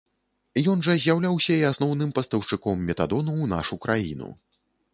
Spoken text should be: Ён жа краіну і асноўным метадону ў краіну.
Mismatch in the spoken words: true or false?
true